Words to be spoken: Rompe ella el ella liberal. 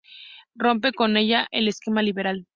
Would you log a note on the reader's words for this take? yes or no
yes